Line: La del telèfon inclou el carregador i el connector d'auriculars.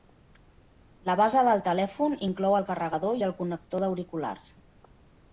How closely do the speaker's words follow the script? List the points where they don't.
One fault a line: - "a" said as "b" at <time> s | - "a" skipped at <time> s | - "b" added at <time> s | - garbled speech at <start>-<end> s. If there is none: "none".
- "base" added at 1.2 s